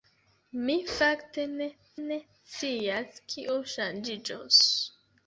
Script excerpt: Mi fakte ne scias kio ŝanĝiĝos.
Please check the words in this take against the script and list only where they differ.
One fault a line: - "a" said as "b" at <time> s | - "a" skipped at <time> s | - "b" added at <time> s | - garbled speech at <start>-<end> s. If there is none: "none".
- "ne" added at 2.0 s